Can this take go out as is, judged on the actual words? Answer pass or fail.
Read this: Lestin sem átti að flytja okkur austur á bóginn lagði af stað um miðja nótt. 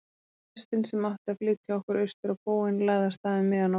pass